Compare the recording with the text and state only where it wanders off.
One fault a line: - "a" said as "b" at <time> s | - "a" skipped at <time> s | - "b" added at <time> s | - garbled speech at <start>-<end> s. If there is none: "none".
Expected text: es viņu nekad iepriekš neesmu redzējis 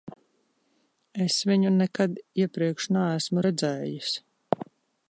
none